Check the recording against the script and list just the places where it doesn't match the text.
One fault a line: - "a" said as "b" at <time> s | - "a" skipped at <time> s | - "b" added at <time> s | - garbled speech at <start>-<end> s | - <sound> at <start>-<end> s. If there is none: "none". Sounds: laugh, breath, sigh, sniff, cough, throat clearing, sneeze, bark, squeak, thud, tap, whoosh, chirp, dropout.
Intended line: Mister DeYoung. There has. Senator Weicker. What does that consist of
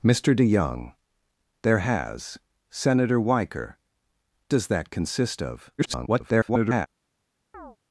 - "What" skipped at 3.8 s
- garbled speech at 5.8-6.9 s
- chirp at 7.5-7.8 s